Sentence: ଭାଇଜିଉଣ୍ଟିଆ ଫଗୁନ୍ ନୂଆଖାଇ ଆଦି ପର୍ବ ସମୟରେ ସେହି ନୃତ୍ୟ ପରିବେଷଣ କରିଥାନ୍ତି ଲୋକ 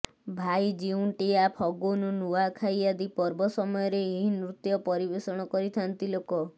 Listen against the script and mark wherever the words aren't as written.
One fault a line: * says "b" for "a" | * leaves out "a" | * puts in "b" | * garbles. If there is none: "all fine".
* says "ଏହି" for "ସେହି"